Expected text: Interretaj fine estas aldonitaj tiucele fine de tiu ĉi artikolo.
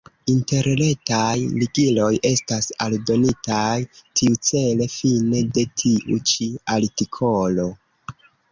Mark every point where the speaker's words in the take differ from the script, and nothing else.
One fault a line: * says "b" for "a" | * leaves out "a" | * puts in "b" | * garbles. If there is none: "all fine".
* says "ligiloj" for "fine"